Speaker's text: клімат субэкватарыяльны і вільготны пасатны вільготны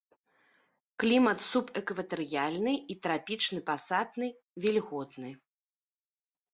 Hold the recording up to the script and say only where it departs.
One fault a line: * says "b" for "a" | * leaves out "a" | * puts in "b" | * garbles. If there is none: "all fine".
* says "трапічны" for "вільготны"